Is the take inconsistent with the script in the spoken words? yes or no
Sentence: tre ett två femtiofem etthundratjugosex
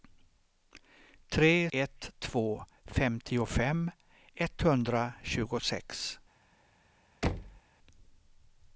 no